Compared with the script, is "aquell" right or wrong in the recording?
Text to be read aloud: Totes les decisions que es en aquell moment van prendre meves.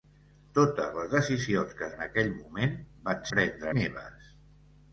right